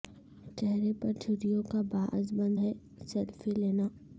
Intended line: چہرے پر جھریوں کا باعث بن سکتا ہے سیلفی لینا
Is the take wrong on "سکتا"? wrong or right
wrong